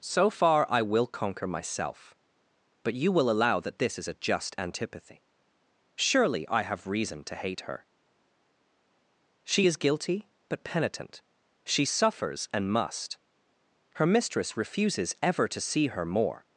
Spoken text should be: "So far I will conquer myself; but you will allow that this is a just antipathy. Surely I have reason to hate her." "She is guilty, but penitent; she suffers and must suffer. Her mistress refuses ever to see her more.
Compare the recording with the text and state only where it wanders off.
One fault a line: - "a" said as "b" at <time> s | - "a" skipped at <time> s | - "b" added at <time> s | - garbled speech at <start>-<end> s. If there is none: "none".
- "suffer" skipped at 13.2 s